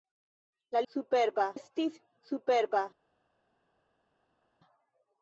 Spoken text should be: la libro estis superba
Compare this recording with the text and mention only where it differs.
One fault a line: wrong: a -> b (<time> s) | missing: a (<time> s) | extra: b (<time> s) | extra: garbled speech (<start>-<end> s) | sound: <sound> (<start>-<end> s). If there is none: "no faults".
wrong: libro -> superba (0.9 s)